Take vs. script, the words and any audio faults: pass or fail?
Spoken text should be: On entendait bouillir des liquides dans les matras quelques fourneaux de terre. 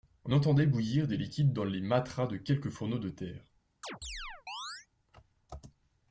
fail